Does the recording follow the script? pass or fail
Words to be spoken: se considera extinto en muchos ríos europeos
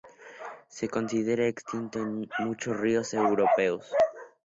pass